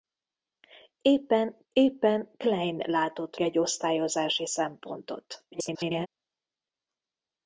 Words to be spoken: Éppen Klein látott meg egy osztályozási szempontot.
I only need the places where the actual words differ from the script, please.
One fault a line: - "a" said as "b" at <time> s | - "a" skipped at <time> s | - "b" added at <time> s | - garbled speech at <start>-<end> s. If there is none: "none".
- "éppen" added at 1.7 s
- "meg" skipped at 3.4 s
- garbled speech at 5.5-6.1 s